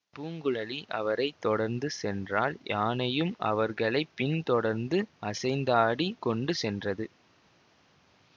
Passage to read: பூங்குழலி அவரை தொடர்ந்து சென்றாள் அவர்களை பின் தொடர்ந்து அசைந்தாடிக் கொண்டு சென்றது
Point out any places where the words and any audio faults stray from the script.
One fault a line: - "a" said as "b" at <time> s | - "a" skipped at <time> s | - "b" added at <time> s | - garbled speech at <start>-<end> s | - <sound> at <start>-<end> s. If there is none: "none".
- "யானையும்" added at 2.6 s